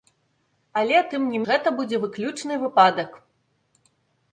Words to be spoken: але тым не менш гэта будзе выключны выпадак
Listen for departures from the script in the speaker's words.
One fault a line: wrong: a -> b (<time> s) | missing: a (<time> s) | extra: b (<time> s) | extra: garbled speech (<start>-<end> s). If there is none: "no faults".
missing: менш (1.4 s)